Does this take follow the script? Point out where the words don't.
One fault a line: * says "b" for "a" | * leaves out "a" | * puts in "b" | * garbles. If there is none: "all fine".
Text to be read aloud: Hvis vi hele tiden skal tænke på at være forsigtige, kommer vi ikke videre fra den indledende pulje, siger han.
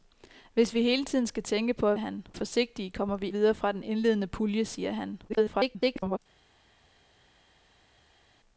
* says "han" for "være"
* leaves out "ikke"
* garbles